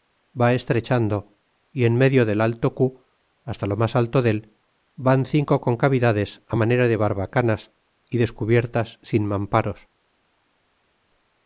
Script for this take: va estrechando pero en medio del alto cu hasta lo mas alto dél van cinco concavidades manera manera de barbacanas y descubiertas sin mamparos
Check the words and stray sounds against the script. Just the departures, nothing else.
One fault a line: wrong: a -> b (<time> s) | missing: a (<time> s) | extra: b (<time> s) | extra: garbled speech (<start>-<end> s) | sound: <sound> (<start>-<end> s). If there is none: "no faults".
wrong: pero -> y (1.7 s)
missing: manera (6.8 s)